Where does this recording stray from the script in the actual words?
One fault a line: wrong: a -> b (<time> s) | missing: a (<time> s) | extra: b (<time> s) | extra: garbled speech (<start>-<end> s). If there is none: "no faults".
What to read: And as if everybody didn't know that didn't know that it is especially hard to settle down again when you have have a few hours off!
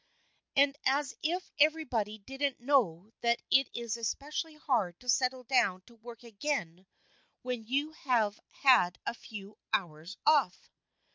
missing: didn't know that (3.4 s)
extra: to work (5.8 s)
wrong: have -> had (8.6 s)